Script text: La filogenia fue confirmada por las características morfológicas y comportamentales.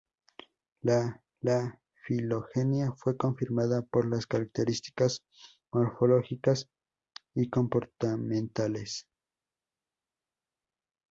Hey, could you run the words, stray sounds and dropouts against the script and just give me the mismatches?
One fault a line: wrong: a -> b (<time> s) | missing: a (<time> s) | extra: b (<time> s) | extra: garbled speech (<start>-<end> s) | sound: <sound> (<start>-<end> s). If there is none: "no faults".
extra: la (1.4 s)